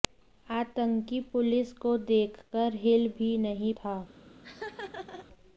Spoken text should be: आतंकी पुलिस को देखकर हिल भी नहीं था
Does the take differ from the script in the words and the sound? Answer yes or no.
yes